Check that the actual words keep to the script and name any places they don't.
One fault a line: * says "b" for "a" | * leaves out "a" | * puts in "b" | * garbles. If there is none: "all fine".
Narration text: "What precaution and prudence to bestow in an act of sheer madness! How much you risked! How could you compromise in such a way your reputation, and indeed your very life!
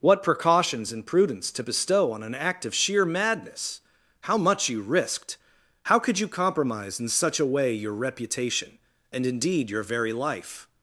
* says "precautions" for "precaution"
* says "on" for "in"